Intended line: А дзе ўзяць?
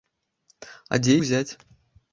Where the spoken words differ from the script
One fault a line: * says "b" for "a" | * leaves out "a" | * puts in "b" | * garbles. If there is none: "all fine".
all fine